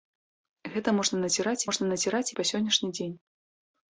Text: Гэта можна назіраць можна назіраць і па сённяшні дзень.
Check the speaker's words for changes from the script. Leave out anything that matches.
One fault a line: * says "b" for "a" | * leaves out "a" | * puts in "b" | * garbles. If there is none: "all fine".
all fine